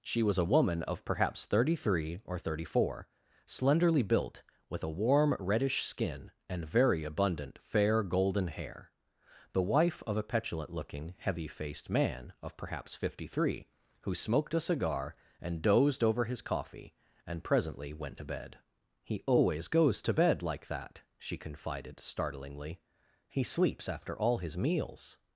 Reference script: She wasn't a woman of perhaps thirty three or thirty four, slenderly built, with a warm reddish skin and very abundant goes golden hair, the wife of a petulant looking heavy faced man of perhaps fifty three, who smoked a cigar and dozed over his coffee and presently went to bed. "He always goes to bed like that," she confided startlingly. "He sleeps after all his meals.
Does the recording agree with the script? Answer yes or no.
no